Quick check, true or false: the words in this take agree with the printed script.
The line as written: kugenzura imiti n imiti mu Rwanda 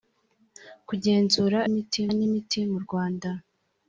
true